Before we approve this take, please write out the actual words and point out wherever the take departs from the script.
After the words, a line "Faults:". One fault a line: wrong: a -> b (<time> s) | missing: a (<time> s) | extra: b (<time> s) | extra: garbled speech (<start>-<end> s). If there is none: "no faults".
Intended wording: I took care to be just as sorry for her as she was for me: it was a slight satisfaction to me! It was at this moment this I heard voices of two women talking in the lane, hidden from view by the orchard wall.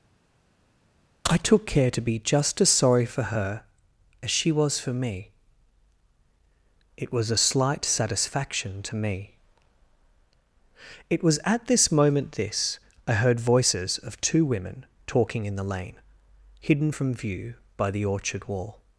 I took care to be just as sorry for her as she was for me: it was a slight satisfaction to me! It was at this moment this I heard voices of two women talking in the lane, hidden from view by the orchard wall.
Faults:
no faults